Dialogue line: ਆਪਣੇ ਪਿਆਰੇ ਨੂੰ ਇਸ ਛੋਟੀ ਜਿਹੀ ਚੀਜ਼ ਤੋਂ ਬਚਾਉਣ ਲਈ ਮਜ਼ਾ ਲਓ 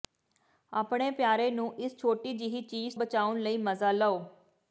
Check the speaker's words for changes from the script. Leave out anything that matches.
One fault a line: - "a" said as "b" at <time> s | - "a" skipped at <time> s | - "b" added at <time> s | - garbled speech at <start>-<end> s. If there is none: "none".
- "ਤੋਂ" skipped at 3.0 s